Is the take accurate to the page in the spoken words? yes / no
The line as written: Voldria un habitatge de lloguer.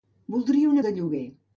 no